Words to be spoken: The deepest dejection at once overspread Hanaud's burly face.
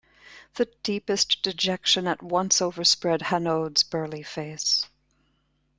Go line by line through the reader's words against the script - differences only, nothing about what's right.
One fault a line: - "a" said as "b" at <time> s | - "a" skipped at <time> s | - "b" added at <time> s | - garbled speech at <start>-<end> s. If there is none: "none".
none